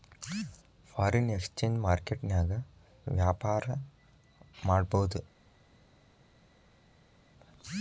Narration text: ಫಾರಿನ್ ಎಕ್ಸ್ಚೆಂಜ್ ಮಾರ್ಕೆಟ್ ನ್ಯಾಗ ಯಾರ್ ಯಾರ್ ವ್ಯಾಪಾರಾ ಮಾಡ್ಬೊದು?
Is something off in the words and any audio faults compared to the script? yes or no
yes